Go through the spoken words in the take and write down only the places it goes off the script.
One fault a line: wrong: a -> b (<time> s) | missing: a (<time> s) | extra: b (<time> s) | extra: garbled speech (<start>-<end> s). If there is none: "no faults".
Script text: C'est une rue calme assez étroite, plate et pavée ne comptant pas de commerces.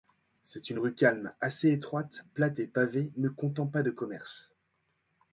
no faults